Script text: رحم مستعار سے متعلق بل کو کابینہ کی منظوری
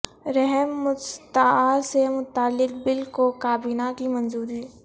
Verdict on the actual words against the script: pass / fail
pass